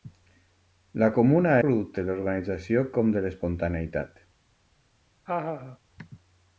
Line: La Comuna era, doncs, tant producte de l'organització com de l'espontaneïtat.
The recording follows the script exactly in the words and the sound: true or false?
false